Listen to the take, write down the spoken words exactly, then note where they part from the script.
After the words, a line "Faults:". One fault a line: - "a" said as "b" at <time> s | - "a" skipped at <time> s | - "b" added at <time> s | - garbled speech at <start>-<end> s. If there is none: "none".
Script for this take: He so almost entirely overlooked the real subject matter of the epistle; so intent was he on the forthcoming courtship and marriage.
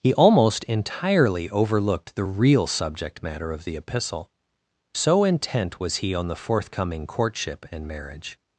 He almost entirely overlooked the real subject matter of the epistle; so intent was he on the forthcoming courtship and marriage.
Faults:
- "so" skipped at 0.1 s